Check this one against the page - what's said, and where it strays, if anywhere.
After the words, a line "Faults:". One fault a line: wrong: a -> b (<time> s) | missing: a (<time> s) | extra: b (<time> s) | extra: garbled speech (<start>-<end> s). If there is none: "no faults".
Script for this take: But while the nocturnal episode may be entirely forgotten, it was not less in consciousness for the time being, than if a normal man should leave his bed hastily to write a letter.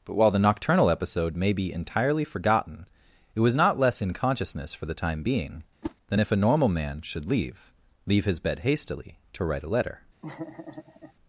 But while the nocturnal episode may be entirely forgotten, it was not less in consciousness for the time being, than if a normal man should leave leave his bed hastily to write a letter.
Faults:
extra: leave (8.1 s)